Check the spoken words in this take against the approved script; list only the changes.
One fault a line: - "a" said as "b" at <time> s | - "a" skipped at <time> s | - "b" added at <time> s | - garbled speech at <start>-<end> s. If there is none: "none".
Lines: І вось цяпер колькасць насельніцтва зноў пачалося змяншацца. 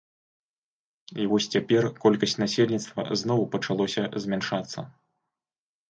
none